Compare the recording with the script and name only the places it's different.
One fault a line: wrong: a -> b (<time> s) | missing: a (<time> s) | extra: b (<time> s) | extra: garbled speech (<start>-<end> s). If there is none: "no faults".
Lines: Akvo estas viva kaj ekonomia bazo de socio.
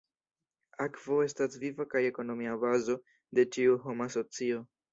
extra: ĉiu homa (3.6 s)